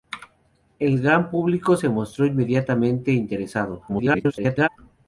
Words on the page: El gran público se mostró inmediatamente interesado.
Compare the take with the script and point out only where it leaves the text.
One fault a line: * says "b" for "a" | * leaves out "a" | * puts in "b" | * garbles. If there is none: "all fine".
* garbles